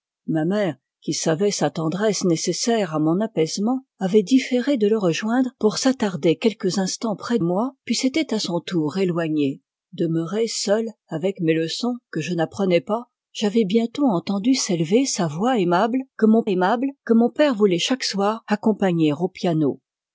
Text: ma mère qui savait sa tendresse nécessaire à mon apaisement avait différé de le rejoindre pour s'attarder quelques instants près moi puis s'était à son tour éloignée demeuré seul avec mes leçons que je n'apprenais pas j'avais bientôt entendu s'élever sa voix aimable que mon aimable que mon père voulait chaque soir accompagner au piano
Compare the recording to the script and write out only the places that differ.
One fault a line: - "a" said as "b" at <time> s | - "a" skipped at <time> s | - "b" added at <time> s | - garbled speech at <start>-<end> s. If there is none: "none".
none